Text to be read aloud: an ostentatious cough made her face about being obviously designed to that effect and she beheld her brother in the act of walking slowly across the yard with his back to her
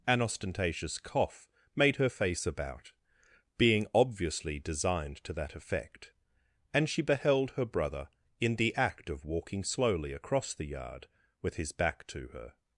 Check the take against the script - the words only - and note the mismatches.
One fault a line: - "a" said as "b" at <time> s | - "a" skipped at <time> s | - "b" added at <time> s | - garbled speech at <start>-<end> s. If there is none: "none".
none